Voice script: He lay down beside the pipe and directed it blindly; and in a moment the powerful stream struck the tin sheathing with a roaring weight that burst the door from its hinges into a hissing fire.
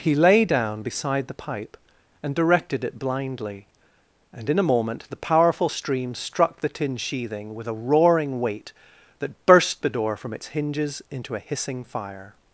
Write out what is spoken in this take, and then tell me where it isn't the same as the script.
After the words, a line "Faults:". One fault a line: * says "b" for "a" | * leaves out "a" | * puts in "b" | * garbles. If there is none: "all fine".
He lay down beside the pipe and directed it blindly; and in a moment the powerful stream struck the tin sheathing with a roaring weight that burst the door from its hinges into a hissing fire.
Faults:
all fine